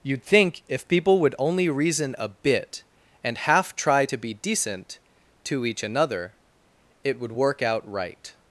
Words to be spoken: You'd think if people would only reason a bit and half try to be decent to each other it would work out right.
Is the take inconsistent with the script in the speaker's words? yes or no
yes